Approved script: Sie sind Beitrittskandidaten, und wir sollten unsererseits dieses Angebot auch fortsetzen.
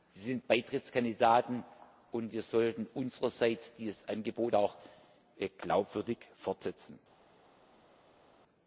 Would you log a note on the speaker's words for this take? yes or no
yes